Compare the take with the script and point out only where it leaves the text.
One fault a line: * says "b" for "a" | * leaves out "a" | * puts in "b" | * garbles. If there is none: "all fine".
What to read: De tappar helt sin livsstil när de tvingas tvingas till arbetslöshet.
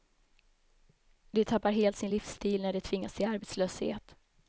* leaves out "tvingas"